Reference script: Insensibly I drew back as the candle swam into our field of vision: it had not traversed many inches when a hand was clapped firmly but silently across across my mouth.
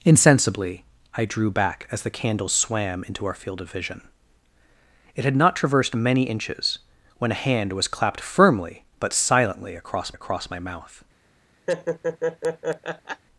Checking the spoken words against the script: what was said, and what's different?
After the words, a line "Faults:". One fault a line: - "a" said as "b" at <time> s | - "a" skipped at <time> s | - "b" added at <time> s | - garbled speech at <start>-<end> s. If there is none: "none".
Insensibly I drew back as the candle swam into our field of vision: it had not traversed many inches when a hand was clapped firmly but silently across across my mouth.
Faults:
none